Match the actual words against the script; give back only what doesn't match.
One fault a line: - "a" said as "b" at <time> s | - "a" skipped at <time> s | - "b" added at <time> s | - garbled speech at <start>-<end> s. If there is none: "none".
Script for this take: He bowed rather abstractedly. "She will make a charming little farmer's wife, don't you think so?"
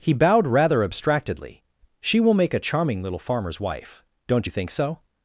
none